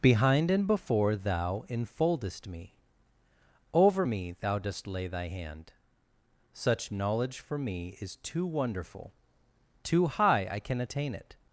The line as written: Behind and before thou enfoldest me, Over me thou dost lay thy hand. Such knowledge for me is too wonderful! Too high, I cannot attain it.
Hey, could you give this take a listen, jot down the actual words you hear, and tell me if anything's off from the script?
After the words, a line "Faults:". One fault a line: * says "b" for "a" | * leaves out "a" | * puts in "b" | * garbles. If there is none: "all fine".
Behind and before thou enfoldest me, Over me thou dost lay thy hand. Such knowledge for me is too wonderful! Too high, I can attain it.
Faults:
* says "can" for "cannot"